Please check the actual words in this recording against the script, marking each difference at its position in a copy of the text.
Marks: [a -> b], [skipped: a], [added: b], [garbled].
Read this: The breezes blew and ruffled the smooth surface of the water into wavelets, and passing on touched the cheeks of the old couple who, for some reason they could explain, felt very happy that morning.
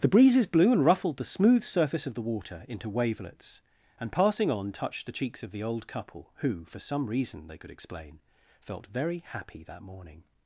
The breezes blew and ruffled the smooth surface of the water into wavelets, and passing on touched the cheeks of the old couple who, for some reason they could explain, felt very happy that morning.